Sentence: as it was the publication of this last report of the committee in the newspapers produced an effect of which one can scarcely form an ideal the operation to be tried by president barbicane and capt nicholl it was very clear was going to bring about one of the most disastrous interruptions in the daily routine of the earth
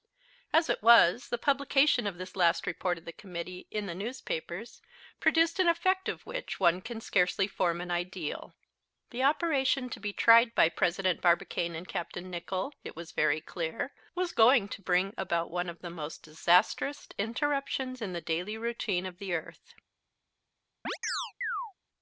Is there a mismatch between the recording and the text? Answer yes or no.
no